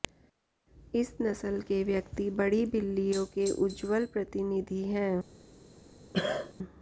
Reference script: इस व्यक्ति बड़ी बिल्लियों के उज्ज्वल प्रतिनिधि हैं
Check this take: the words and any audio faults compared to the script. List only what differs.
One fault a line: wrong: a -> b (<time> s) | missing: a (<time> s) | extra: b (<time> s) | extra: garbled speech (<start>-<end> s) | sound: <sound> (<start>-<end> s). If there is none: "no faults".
extra: नस्ल के (1.2 s)
sound: cough (6.1-6.5 s)